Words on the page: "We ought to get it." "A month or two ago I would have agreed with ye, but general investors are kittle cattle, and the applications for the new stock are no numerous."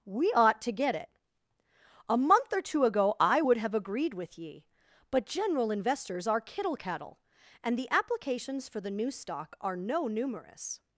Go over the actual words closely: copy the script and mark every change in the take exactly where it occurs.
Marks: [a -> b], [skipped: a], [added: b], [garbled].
"We ought to get it." "A month or two ago I would have agreed with ye, but general investors are kittle cattle, and the applications for the new stock are no numerous."